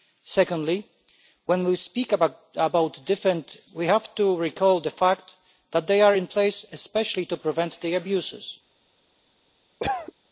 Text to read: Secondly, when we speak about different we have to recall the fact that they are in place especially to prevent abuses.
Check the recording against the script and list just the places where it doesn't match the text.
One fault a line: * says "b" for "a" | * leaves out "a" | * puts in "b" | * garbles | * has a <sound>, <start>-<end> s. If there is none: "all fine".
* has a cough, 9.8-10.1 s